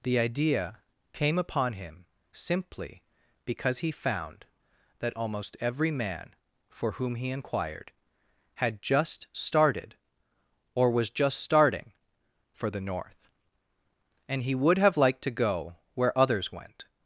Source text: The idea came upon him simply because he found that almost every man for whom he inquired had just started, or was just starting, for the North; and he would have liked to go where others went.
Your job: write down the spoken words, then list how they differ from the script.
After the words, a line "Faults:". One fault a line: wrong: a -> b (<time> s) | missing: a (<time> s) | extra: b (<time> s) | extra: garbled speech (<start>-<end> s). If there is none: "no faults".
The idea came upon him simply because he found that almost every man for whom he inquired had just started, or was just starting, for the North; and he would have liked to go where others went.
Faults:
no faults